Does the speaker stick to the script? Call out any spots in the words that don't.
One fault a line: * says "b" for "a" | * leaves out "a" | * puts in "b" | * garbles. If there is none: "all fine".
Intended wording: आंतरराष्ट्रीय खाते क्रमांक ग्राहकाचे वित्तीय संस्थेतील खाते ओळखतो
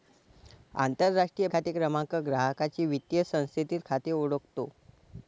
all fine